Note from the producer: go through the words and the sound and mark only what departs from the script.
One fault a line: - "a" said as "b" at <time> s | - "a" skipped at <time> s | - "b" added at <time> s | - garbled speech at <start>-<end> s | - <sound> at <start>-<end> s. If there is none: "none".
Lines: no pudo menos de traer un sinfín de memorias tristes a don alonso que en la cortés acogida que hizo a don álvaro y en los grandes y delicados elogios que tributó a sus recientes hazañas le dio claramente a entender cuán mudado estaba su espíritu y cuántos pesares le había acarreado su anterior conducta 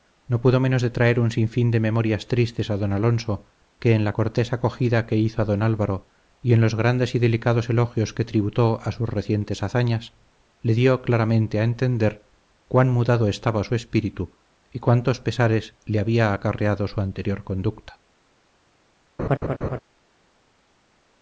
- laugh at 19.2-19.8 s